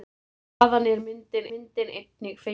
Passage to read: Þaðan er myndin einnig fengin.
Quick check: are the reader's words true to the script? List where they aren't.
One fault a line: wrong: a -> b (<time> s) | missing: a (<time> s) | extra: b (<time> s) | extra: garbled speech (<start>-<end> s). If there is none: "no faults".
extra: myndin (1.5 s)